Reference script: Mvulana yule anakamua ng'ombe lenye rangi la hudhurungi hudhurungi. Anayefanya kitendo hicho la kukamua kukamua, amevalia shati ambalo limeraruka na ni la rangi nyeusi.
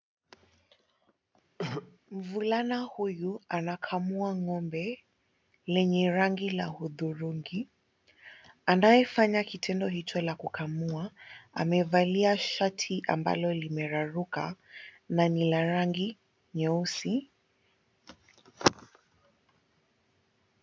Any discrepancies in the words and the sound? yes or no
yes